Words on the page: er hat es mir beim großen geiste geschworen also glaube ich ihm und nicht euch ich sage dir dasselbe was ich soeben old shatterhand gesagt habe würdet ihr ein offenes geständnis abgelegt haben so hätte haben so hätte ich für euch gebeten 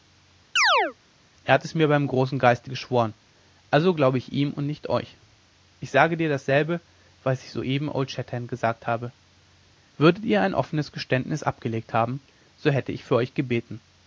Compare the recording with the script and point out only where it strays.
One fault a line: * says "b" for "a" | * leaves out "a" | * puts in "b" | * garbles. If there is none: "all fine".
* leaves out "haben so hätte"